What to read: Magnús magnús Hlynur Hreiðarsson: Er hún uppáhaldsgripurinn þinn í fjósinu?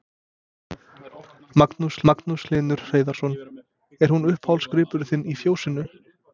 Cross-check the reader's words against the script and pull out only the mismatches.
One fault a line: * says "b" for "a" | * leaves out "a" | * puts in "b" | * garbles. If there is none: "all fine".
all fine